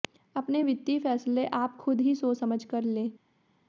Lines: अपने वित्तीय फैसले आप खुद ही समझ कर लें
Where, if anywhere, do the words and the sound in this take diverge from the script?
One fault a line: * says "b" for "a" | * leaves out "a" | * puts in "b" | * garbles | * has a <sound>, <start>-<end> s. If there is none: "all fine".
* puts in "सोच"